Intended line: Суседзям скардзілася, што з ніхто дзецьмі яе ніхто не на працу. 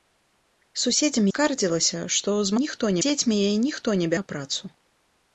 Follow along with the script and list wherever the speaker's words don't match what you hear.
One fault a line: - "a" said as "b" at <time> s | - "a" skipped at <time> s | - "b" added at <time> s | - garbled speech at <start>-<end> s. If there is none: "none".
none